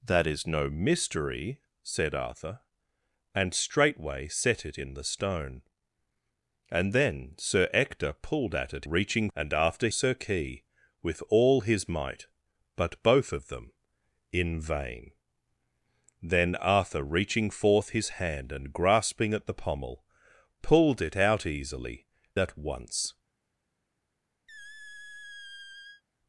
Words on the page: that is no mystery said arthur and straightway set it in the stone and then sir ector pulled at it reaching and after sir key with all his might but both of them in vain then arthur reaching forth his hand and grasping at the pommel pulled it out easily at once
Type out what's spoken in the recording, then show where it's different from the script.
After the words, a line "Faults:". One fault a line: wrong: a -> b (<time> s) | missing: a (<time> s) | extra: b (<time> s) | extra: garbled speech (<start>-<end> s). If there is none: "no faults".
that is no mystery said arthur and straightway set it in the stone and then sir ector pulled at it reaching and after sir key with all his might but both of them in vain then arthur reaching forth his hand and grasping at the pommel pulled it out easily at once
Faults:
no faults